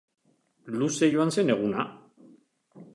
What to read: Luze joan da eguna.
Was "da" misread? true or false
true